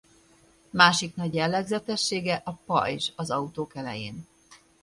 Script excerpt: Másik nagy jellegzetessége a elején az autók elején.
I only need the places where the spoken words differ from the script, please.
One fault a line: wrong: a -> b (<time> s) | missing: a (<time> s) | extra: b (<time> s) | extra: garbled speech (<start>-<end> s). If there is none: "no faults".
wrong: elején -> pajzs (2.5 s)